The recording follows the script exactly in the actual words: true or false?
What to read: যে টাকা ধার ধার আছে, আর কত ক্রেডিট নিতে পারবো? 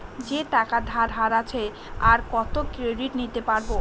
true